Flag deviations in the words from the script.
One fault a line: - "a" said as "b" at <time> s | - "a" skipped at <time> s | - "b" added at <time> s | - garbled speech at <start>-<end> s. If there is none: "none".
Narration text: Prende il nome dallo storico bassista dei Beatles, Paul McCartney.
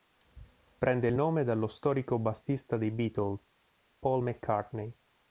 none